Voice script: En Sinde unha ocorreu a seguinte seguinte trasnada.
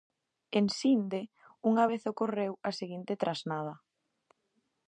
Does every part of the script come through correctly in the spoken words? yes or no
no